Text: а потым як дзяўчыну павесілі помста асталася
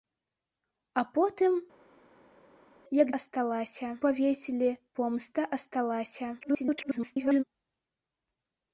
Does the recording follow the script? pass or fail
fail